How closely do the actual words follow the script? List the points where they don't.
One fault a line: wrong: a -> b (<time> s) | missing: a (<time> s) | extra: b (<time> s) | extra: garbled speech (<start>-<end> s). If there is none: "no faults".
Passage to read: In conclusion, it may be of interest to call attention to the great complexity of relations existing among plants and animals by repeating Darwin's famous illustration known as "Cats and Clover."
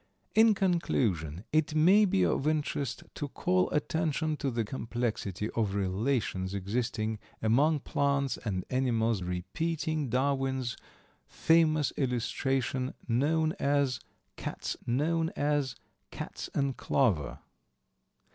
missing: great (4.6 s)
missing: by (9.2 s)
extra: known as Cats (14.9 s)